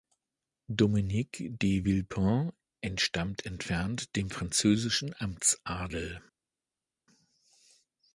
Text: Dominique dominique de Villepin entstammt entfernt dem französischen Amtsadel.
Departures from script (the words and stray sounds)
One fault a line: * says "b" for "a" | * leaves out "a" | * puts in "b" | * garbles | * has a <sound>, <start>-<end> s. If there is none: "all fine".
* leaves out "dominique"